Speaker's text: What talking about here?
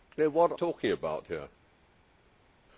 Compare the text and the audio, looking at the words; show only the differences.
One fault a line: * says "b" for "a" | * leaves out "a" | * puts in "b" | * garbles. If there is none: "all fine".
all fine